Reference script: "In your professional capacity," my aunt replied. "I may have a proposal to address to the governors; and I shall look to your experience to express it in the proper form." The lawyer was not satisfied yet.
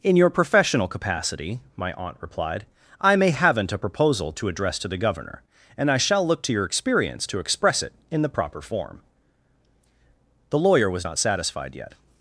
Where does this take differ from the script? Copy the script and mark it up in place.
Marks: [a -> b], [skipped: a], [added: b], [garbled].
"In your professional capacity," my aunt replied. "I may [have -> haven't] a proposal to address to the [governors; -> governor] and I shall look to your experience to express it in the proper form." The lawyer was not satisfied yet.